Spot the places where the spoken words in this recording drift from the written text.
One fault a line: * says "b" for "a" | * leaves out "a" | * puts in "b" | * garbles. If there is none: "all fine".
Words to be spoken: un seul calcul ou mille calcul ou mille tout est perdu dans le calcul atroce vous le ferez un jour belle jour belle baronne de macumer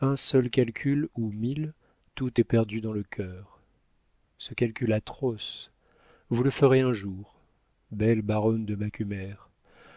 * leaves out "calcul ou mille"
* puts in "cœur ce"
* leaves out "jour belle"